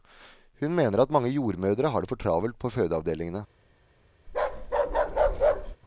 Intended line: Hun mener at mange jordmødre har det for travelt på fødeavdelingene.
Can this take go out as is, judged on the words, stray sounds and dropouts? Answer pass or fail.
fail